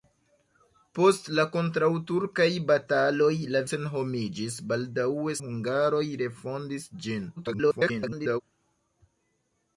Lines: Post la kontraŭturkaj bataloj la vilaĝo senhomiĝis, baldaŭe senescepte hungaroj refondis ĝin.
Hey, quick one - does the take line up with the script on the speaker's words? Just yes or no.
no